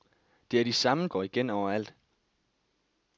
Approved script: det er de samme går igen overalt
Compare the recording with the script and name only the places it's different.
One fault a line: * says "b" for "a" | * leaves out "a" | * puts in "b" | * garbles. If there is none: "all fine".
all fine